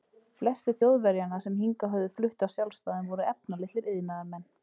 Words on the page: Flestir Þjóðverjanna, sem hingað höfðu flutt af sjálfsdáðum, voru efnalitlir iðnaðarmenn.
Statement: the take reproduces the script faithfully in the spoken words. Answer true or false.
true